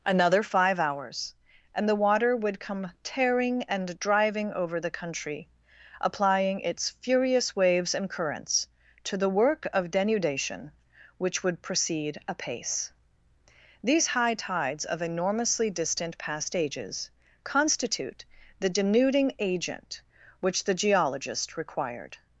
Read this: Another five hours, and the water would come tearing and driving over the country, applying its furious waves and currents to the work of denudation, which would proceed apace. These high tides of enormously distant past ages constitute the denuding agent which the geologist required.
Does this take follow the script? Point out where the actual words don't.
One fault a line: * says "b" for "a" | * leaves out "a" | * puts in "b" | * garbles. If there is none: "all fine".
all fine